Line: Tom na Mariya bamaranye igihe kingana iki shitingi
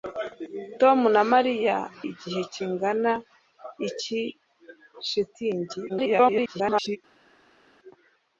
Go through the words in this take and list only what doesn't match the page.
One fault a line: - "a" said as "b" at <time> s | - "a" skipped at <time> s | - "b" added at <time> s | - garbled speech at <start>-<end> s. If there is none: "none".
- "bamaranye" skipped at 1.8 s
- garbled speech at 5.9-7.0 s